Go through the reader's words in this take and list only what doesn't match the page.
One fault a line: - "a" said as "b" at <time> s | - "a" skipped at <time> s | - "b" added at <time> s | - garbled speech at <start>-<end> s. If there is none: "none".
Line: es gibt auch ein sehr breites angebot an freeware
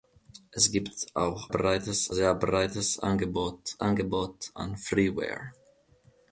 - "ein" said as "breites" at 1.5 s
- "angebot" added at 3.8 s